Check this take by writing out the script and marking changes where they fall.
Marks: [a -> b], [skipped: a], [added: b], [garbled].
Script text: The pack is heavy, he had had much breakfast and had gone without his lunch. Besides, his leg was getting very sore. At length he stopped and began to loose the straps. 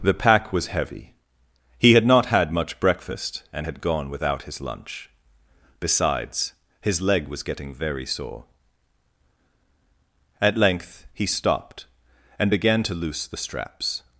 The pack [is -> was] heavy, he had [added: not] had much breakfast and had gone without his lunch. Besides, his leg was getting very sore. At length he stopped and began to loose the straps.